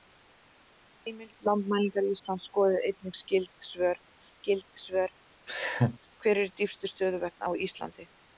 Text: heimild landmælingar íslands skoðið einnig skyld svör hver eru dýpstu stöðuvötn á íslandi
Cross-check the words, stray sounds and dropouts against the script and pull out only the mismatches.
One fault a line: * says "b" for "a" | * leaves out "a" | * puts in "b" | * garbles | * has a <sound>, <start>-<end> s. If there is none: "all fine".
* puts in "skyld svör"
* has a laugh, 5.5-6.0 s